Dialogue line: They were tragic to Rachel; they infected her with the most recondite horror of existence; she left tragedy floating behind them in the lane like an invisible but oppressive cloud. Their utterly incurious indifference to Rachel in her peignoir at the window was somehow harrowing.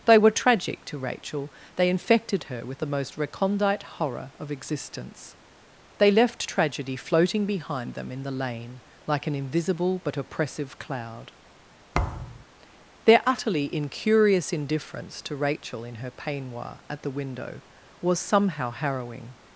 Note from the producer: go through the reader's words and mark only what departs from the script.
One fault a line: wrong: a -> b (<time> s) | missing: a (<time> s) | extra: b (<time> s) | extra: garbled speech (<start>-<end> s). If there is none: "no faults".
wrong: she -> they (6.0 s)